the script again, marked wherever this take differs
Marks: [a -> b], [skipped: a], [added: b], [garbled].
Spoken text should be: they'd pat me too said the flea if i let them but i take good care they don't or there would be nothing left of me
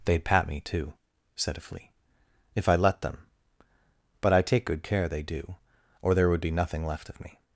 they'd pat me too said [the -> a] flea if i let them but i take good care they [don't -> do] or there would be nothing left of me